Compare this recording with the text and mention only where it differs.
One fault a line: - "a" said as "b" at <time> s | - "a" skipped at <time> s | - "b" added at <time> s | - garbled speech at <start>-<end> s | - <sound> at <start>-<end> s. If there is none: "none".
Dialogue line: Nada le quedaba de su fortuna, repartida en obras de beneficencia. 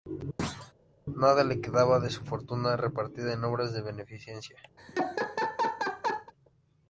- thud at 0.4-0.7 s
- laugh at 4.8-6.3 s